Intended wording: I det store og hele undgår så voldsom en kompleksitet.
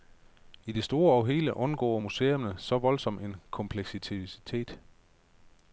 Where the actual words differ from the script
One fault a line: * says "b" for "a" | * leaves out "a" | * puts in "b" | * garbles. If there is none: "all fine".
* puts in "museerne"